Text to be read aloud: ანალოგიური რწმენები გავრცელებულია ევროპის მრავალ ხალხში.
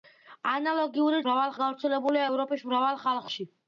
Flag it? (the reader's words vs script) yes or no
yes